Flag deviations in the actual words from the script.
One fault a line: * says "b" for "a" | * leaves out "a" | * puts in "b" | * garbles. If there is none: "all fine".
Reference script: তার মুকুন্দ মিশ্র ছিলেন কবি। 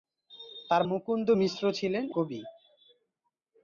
all fine